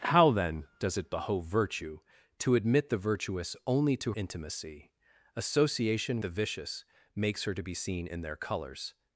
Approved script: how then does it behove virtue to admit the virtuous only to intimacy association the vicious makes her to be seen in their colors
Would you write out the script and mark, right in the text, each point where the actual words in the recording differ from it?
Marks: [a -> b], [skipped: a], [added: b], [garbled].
how then does it behove virtue to admit the virtuous only to intimacy association the vicious makes her to be seen in their colors